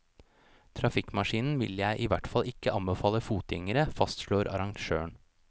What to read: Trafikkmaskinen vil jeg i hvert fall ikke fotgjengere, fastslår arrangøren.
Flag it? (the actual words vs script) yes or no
yes